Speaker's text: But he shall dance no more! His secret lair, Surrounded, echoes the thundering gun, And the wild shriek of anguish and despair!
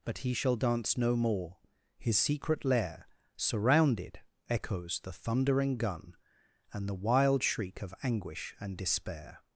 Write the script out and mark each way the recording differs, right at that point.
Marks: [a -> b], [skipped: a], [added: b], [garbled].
But he shall dance no more! His secret lair, Surrounded, echoes the thundering gun, And the wild shriek of anguish and despair!